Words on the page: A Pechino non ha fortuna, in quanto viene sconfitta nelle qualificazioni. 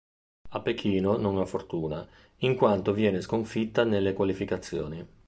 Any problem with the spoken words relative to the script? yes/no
no